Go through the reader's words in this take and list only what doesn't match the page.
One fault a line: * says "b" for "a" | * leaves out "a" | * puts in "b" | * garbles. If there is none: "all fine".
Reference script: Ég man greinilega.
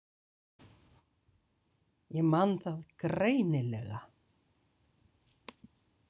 * puts in "það"